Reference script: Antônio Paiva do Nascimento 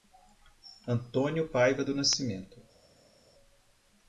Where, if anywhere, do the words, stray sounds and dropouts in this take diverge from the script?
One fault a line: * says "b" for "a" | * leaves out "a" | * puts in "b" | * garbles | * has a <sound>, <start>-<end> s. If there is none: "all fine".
all fine